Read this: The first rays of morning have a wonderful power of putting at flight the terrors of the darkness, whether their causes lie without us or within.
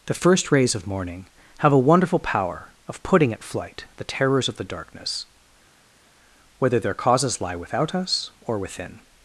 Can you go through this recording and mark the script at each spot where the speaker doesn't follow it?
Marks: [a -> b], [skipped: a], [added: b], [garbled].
The first rays of morning have a wonderful power of putting at flight the terrors of the darkness, whether their causes lie without us or within.